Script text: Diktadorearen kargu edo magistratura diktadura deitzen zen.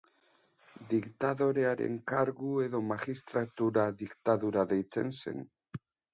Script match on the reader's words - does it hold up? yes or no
yes